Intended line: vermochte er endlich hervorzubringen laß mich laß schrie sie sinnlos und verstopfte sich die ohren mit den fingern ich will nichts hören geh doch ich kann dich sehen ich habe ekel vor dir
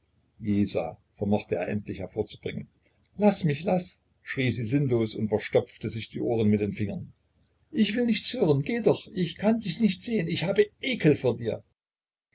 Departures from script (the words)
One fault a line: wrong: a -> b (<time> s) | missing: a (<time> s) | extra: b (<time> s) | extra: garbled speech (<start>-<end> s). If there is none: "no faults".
extra: nicht (9.8 s)